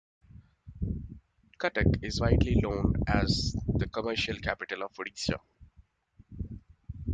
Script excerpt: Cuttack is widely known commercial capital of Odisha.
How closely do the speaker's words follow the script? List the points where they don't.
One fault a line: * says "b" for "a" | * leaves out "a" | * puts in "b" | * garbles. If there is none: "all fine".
* puts in "as the"